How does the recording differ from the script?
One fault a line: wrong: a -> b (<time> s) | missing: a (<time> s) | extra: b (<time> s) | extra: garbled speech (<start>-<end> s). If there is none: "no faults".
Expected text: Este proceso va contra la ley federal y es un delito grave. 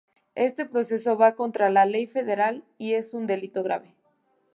no faults